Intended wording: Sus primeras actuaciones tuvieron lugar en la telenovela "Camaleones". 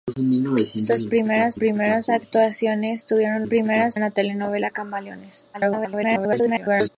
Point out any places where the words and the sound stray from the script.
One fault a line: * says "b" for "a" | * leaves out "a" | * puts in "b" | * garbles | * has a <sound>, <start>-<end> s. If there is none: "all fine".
* puts in "primeras"
* says "primeras" for "lugar"
* garbles